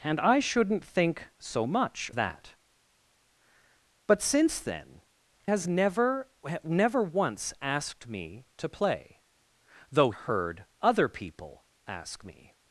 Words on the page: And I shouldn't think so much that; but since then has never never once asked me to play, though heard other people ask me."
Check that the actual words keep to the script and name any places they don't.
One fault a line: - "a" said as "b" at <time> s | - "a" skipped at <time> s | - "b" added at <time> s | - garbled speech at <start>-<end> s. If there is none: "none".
none